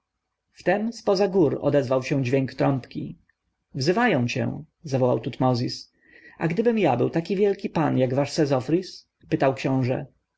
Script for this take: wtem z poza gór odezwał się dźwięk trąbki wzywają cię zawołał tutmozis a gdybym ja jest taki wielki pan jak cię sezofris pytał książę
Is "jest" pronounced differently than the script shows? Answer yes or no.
yes